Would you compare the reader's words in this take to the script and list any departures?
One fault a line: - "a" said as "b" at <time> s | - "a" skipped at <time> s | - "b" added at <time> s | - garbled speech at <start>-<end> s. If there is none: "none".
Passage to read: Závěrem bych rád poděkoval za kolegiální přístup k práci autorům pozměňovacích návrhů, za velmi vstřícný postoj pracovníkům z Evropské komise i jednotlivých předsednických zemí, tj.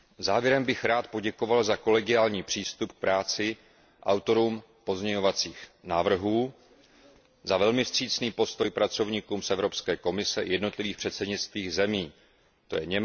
none